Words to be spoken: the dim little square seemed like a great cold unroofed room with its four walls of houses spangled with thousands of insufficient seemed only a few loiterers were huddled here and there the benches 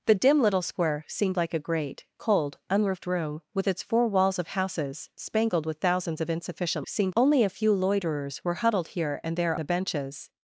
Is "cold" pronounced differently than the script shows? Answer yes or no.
no